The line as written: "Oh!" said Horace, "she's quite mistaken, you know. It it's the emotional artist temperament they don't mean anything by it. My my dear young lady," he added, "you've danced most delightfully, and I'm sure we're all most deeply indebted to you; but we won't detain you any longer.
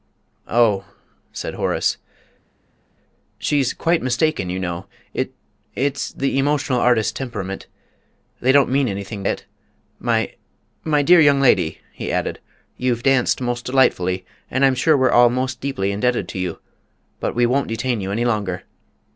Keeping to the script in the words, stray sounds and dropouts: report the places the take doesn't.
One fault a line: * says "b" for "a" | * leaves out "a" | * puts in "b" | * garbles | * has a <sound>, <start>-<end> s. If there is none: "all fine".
* leaves out "by"